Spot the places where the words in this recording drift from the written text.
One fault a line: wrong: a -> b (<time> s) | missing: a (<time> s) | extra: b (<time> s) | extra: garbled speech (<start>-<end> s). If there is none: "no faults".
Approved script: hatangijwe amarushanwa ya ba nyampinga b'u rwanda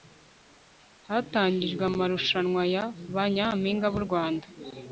no faults